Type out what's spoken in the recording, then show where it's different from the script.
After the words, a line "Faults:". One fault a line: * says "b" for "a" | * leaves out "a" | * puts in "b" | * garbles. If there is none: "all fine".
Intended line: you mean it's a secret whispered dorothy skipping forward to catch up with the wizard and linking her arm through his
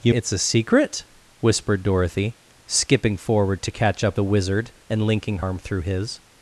you it's a secret whispered dorothy skipping forward to catch up the wizard and linking arm through his
Faults:
* leaves out "mean"
* leaves out "with"
* leaves out "her"